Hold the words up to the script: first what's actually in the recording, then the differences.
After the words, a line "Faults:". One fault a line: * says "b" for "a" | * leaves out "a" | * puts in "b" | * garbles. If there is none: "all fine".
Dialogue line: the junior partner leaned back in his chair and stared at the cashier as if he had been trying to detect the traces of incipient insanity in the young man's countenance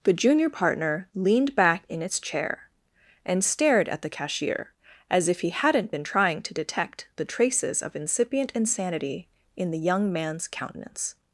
the junior partner leaned back in its chair and stared at the cashier as if he hadn't been trying to detect the traces of incipient insanity in the young man's countenance
Faults:
* says "its" for "his"
* says "hadn't" for "had"